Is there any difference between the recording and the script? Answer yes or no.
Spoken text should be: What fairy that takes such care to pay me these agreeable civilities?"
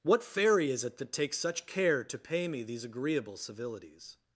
yes